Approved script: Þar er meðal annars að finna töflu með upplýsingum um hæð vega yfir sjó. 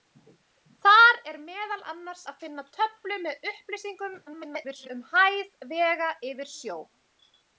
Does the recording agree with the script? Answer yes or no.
no